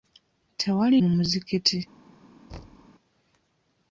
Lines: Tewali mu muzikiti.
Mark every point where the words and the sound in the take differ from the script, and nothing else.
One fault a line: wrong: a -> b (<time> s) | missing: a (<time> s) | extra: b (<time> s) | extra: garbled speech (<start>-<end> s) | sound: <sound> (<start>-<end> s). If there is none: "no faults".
sound: thud (2.5-2.9 s)